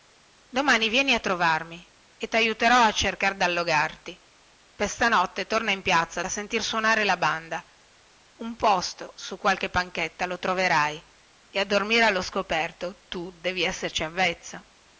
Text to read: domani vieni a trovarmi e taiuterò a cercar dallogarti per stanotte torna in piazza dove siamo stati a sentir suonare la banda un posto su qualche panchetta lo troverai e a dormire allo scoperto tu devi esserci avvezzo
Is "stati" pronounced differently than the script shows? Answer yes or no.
yes